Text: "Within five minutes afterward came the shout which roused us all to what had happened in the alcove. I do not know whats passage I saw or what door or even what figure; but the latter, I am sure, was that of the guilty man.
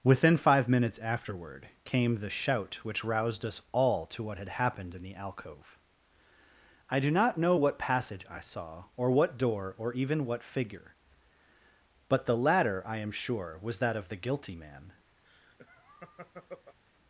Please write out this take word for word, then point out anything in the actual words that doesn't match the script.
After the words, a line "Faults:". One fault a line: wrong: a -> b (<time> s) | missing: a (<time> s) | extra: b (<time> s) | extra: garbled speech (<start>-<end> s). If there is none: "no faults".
"Within five minutes afterward came the shout which roused us all to what had happened in the alcove. I do not know what passage I saw or what door or even what figure; but the latter, I am sure, was that of the guilty man.
Faults:
wrong: whats -> what (7.5 s)